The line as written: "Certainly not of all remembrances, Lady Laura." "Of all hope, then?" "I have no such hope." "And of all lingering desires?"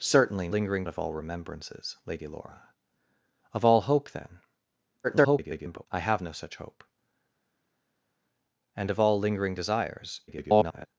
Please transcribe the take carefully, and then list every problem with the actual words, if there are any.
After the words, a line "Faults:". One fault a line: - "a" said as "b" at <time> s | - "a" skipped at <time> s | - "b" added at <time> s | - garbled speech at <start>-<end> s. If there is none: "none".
"Certainly lingering of all remembrances, Lady Laura." "Of all hope, then?" [garbled] "I have no such hope." "And of all lingering desires?" [garbled]
Faults:
- "not" said as "lingering" at 0.5 s
- garbled speech at 5.0-5.9 s
- garbled speech at 10.3-10.9 s